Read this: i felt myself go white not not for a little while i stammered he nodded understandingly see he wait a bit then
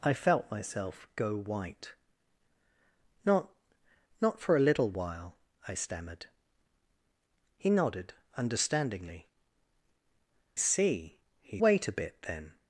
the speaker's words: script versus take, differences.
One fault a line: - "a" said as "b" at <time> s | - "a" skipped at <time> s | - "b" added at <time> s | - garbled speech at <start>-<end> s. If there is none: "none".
none